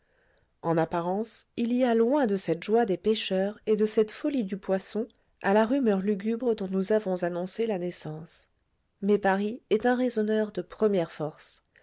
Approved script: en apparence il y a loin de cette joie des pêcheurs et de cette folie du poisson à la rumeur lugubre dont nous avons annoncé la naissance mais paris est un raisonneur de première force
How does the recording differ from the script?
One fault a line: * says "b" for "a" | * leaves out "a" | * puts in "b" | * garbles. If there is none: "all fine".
all fine